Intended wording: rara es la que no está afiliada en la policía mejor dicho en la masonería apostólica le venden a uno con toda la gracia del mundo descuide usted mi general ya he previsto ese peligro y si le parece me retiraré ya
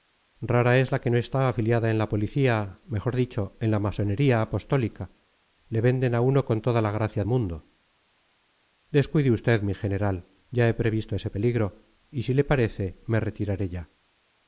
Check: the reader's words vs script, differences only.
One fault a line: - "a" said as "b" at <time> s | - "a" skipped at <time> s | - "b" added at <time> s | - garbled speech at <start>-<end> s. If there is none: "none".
- "del" skipped at 7.2 s